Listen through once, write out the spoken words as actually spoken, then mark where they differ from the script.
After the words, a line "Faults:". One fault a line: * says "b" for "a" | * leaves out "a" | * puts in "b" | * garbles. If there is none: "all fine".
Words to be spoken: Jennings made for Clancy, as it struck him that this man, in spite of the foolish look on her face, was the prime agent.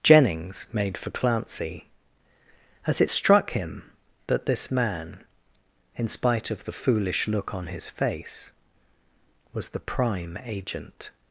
Jennings made for Clancy, as it struck him that this man, in spite of the foolish look on his face, was the prime agent.
Faults:
* says "his" for "her"